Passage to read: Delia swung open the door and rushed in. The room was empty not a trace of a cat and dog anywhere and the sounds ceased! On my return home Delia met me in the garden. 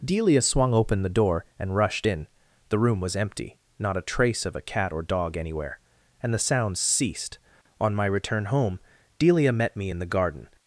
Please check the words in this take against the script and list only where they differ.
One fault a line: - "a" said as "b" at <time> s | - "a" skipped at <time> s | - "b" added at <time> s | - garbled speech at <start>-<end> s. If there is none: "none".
- "and" said as "or" at 4.9 s